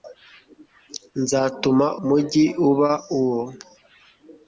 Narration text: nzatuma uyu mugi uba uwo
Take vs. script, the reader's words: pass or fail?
fail